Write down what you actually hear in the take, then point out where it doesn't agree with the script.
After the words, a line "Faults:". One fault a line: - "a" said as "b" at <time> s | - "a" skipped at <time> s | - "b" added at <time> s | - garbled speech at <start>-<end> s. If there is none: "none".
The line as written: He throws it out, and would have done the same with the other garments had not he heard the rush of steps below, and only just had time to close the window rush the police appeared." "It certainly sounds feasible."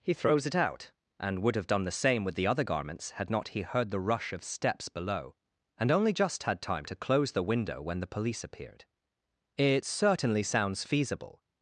He throws it out, and would have done the same with the other garments had not he heard the rush of steps below, and only just had time to close the window when the police appeared." "It certainly sounds feasible."
Faults:
- "rush" said as "when" at 7.8 s